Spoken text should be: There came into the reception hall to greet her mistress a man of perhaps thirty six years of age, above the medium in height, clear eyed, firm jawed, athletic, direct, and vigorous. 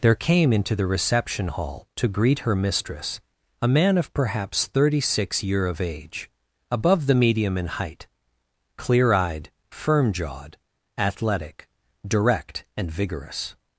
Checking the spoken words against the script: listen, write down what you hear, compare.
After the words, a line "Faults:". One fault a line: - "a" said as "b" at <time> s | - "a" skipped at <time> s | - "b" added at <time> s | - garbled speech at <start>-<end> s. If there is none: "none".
There came into the reception hall to greet her mistress a man of perhaps thirty six year of age, above the medium in height, clear eyed, firm jawed, athletic, direct, and vigorous.
Faults:
- "years" said as "year" at 5.4 s